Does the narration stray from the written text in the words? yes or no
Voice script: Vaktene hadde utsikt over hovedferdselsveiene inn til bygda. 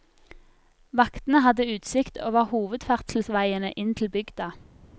no